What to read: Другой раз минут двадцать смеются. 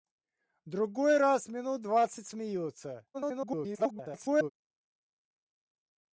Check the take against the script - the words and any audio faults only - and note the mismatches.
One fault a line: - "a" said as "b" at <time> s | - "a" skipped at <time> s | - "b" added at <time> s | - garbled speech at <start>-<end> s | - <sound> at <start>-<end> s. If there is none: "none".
- garbled speech at 3.1-4.5 s